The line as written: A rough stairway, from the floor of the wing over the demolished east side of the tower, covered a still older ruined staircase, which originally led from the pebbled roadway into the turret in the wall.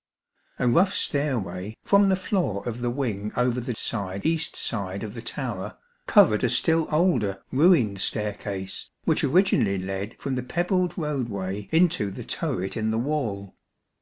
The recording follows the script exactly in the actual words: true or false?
false